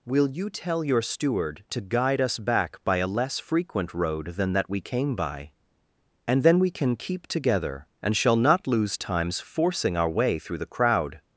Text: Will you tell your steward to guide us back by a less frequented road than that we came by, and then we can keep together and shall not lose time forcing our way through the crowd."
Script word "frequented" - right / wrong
wrong